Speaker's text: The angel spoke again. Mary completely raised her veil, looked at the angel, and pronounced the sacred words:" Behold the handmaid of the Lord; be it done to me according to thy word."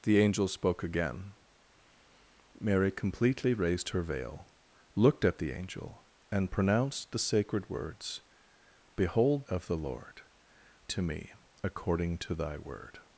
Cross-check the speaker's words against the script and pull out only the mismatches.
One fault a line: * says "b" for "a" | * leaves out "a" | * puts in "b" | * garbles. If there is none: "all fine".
* leaves out "the handmaid"
* leaves out "be it done"